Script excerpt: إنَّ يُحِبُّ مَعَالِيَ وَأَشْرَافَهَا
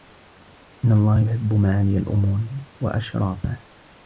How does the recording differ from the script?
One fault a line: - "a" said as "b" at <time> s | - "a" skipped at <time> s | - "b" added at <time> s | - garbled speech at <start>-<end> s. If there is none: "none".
- "اللَّهَ" added at 0.9 s
- "الْأُمُورِ" added at 2.0 s